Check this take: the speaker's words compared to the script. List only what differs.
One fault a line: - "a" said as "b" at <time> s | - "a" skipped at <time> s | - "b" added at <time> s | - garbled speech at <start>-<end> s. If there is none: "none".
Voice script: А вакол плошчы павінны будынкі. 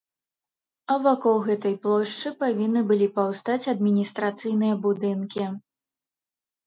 - "гэтай" added at 1.5 s
- "былі паўстаць адміністрацыйныя" added at 2.9 s